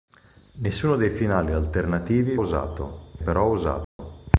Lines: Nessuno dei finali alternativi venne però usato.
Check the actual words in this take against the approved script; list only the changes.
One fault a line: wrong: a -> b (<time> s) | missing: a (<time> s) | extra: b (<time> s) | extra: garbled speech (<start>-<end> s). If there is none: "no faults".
wrong: venne -> usato (2.4 s)